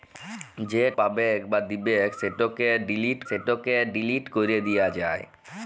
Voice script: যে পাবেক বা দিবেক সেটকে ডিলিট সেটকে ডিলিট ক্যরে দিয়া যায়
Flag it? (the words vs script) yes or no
no